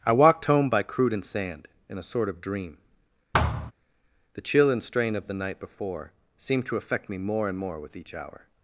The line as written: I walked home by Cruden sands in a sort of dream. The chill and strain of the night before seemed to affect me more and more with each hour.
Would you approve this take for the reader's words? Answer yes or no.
no